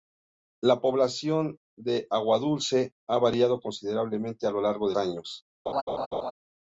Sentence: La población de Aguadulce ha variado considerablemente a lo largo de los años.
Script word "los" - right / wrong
wrong